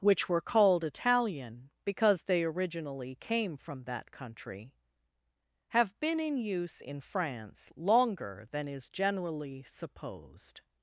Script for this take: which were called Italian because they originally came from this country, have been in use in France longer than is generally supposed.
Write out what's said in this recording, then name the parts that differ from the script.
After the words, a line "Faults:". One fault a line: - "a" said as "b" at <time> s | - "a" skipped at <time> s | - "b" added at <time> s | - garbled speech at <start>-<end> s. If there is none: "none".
which were called Italian because they originally came from that country, have been in use in France longer than is generally supposed.
Faults:
- "this" said as "that" at 3.8 s